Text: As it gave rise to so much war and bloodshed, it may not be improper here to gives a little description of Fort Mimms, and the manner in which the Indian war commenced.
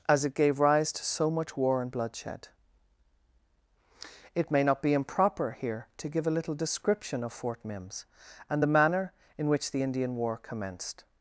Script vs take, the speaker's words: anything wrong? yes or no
yes